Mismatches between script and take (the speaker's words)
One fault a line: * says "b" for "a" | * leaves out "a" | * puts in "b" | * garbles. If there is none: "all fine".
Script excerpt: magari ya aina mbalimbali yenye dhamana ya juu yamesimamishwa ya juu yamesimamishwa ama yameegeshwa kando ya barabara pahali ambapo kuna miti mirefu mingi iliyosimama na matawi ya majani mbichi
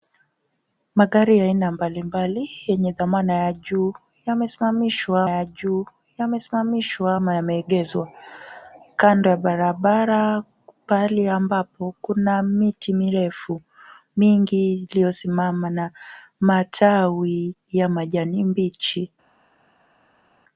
all fine